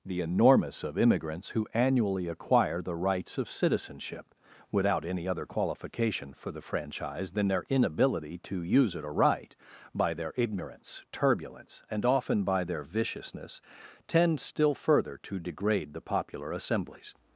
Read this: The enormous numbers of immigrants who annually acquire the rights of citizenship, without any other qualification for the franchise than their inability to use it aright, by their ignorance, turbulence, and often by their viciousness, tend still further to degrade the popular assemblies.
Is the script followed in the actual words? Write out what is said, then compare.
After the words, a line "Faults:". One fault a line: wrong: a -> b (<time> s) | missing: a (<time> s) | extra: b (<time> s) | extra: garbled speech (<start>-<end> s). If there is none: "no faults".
The enormous of immigrants who annually acquire the rights of citizenship, without any other qualification for the franchise than their inability to use it aright, by their ignorance, turbulence, and often by their viciousness, tend still further to degrade the popular assemblies.
Faults:
missing: numbers (0.8 s)